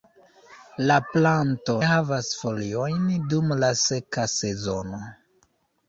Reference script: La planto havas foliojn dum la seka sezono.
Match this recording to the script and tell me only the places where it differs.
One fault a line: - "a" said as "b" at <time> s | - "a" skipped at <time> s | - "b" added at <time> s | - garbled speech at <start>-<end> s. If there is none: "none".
none